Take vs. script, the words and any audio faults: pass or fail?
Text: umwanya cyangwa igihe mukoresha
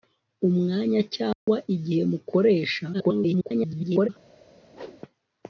fail